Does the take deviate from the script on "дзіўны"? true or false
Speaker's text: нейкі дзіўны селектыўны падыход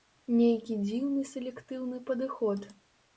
false